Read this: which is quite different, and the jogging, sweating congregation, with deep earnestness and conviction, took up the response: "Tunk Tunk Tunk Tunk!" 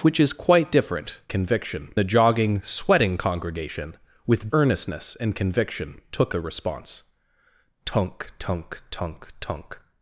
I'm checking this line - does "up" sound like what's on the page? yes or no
no